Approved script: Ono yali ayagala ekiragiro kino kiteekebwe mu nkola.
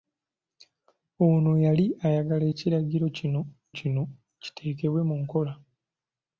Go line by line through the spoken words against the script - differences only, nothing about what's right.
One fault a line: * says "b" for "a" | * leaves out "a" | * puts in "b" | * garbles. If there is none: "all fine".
* puts in "kino"